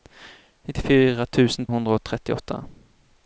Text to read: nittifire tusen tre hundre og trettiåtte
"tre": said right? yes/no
no